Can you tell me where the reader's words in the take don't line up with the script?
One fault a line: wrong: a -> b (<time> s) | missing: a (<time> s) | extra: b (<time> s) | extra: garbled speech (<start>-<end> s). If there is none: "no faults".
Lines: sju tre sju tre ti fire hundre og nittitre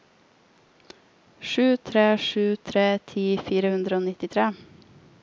no faults